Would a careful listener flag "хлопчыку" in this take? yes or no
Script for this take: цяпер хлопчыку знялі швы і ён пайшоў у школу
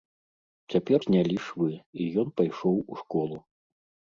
yes